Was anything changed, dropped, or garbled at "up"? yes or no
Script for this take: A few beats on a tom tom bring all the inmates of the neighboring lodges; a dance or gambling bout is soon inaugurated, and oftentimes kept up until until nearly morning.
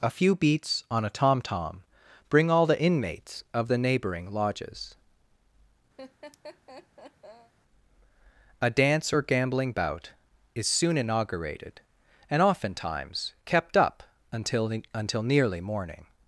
no